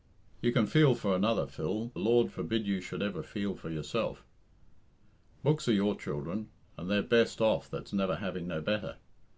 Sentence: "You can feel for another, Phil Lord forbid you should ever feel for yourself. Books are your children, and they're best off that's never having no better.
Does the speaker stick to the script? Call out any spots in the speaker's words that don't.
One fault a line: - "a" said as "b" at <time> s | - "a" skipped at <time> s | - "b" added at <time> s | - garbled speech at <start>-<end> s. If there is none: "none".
none